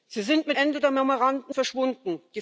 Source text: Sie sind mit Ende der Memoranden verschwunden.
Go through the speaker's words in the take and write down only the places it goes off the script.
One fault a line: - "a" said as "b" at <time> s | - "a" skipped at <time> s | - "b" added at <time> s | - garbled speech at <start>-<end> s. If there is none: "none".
none